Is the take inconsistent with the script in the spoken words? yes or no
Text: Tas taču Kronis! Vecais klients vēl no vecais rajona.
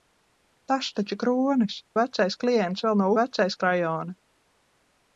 no